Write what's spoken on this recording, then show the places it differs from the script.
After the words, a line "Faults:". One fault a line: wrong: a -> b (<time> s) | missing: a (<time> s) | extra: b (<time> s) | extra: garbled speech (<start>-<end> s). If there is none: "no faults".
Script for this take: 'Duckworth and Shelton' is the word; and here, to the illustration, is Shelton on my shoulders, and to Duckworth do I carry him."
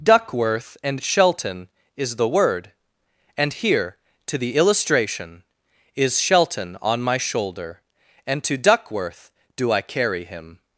'Duckworth and Shelton' is the word; and here, to the illustration, is Shelton on my shoulder, and to Duckworth do I carry him."
Faults:
wrong: shoulders -> shoulder (7.2 s)